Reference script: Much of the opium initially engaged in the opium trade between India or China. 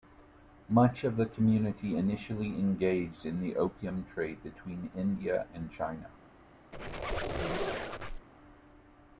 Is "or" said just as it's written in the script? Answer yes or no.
no